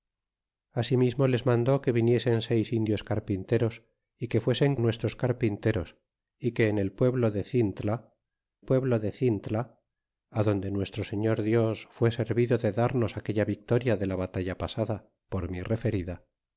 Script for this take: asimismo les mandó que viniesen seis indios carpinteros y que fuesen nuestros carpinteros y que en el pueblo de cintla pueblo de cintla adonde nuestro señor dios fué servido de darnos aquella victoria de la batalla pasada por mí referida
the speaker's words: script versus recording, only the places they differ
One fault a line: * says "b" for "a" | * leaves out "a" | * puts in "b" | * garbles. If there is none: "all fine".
all fine